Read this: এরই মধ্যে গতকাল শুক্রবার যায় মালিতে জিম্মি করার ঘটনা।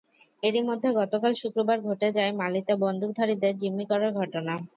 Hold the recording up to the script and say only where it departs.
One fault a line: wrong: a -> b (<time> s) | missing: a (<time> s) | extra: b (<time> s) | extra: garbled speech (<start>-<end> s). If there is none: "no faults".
extra: ঘটে (1.9 s)
extra: বন্দুকধারীদের (2.8 s)